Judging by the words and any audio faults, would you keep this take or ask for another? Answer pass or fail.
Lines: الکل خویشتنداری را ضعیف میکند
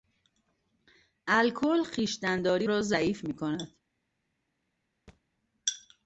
fail